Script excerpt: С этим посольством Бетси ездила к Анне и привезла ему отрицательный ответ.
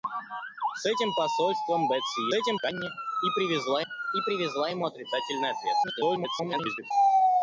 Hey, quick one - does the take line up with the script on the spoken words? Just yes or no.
no